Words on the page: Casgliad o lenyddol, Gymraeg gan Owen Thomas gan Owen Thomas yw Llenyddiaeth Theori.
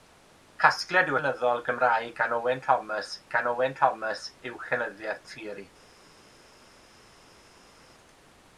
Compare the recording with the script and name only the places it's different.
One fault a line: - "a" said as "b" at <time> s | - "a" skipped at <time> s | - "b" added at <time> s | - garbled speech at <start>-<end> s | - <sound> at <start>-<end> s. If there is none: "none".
none